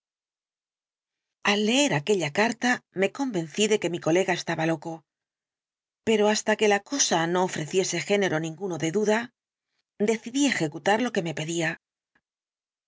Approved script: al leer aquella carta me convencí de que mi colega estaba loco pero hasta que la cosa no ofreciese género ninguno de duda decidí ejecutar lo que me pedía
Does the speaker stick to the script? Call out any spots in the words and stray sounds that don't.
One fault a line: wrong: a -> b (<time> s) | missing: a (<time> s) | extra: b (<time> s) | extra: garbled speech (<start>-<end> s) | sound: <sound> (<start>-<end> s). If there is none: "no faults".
no faults